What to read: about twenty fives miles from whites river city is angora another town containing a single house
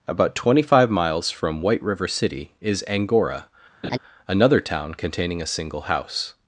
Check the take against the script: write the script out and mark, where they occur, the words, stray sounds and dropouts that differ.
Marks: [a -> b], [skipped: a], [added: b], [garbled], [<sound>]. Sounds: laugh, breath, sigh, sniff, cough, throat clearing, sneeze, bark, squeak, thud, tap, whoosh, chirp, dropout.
about twenty [fives -> five] miles from [whites -> white] river city is angora [laugh] another town containing a single house